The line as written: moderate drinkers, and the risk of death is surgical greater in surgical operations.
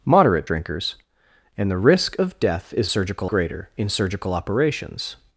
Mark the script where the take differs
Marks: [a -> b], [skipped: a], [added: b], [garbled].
moderate drinkers, and the risk of death is surgical greater in surgical operations.